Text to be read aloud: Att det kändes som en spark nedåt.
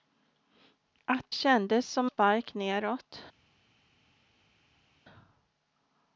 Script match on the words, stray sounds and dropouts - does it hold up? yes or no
no